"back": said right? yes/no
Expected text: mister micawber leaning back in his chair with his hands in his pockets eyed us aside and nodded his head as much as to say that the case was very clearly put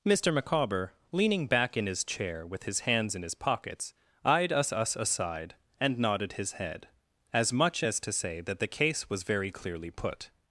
yes